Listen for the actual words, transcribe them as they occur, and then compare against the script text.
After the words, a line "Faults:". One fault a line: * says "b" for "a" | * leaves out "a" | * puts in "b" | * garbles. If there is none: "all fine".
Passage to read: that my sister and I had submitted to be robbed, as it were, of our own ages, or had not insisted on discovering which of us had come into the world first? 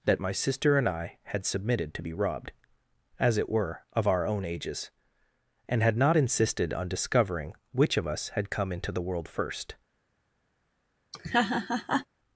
that my sister and I had submitted to be robbed, as it were, of our own ages, and had not insisted on discovering which of us had come into the world first?
Faults:
* says "and" for "or"